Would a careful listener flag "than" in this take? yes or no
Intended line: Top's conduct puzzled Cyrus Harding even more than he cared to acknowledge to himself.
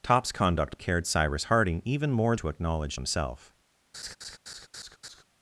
yes